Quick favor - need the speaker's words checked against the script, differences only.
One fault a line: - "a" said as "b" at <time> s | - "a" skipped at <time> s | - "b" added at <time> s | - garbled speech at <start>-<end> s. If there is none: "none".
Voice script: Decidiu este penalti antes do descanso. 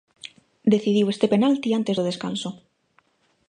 none